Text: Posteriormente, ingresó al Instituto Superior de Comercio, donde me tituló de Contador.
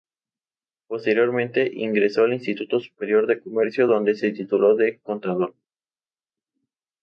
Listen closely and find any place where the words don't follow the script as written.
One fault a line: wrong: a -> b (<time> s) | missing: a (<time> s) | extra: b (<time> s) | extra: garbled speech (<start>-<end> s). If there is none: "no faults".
wrong: me -> se (4.1 s)